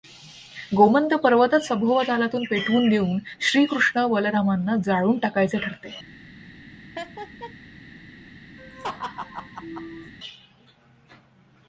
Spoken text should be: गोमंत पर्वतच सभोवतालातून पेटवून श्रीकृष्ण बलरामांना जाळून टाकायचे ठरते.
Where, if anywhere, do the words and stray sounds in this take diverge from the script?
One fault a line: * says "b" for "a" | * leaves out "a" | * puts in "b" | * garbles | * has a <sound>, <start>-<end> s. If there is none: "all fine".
* puts in "देऊन"
* has a laugh, 7.0-7.6 s
* has a laugh, 8.6-10.1 s